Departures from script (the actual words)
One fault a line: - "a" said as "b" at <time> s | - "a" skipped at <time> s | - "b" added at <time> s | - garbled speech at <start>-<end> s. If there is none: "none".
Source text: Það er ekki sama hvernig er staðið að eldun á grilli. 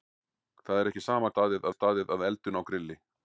- "hvernig" said as "staðið" at 1.3 s